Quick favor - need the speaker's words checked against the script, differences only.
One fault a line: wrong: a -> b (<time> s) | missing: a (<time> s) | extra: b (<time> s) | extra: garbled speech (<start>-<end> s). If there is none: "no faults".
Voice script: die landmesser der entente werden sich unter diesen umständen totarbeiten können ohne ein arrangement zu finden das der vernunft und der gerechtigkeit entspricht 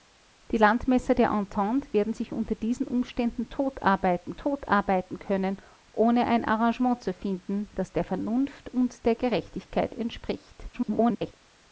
extra: totarbeiten (4.4 s)
extra: garbled speech (10.7-11.3 s)